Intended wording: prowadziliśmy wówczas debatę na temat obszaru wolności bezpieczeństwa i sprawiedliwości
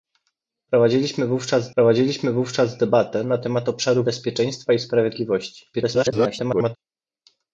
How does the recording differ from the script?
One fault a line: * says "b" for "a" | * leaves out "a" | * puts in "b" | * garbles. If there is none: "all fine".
* puts in "prowadziliśmy wówczas"
* leaves out "wolności"
* garbles